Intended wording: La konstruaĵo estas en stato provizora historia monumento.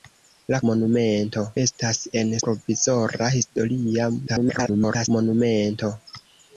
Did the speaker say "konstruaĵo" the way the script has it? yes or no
no